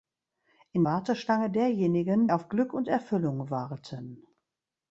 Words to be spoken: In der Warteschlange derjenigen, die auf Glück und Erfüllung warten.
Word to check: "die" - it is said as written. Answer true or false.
false